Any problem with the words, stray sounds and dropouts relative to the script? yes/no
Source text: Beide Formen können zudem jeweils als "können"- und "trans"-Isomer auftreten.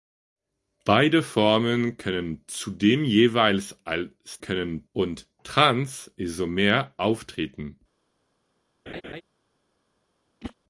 yes